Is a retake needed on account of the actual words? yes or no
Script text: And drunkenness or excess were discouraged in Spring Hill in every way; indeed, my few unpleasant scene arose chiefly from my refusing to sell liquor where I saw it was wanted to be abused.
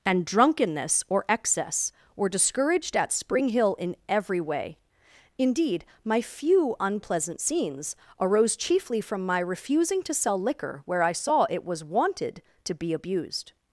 yes